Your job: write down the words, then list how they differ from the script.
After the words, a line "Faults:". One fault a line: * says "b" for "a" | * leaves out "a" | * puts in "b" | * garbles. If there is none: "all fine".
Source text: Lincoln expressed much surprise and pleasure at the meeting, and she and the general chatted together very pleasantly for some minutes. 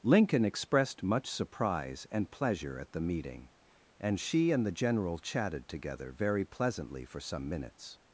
Lincoln expressed much surprise and pleasure at the meeting, and she and the general chatted together very pleasantly for some minutes.
Faults:
all fine